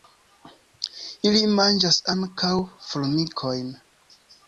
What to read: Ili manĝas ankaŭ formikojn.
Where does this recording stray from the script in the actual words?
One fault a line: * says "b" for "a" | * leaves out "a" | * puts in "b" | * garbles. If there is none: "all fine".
all fine